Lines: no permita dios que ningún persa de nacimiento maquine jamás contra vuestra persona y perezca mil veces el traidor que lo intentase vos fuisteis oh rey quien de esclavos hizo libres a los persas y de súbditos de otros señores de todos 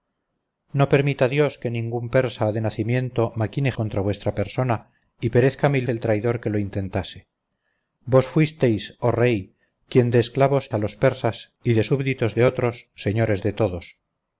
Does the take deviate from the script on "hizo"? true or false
true